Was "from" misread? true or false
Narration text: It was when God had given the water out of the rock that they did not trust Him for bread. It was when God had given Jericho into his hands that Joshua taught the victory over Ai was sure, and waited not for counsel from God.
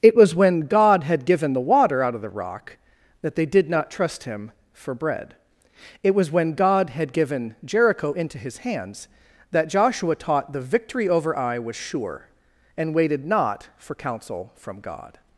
false